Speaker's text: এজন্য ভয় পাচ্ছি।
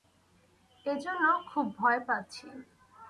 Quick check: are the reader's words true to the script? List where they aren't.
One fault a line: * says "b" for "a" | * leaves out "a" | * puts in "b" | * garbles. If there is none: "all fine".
* puts in "খুব"